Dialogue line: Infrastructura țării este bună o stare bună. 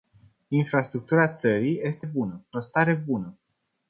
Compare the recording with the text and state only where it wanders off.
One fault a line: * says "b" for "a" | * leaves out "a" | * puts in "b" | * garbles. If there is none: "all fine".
all fine